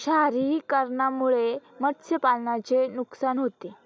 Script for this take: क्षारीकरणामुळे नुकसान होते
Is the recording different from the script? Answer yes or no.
yes